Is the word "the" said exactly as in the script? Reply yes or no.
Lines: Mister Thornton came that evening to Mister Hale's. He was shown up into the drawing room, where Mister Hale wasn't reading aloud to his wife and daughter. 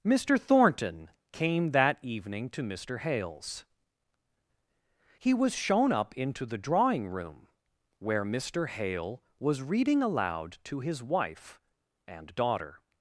yes